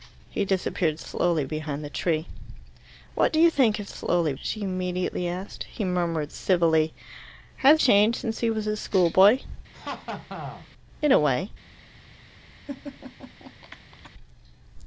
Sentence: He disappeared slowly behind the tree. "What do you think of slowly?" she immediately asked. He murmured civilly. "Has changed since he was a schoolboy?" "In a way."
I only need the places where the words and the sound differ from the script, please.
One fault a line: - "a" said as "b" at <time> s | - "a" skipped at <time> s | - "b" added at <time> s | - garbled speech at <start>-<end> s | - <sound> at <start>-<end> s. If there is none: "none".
- laugh at 9.7-10.7 s
- laugh at 12.7-14.1 s